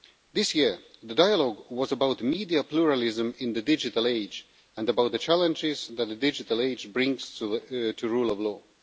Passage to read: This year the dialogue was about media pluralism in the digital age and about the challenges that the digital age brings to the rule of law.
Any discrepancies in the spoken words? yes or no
no